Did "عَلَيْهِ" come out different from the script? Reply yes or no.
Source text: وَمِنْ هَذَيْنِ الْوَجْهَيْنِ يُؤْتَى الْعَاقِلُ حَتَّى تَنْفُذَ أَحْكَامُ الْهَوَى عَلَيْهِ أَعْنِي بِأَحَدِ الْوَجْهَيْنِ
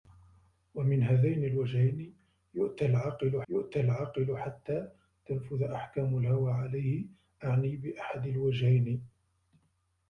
no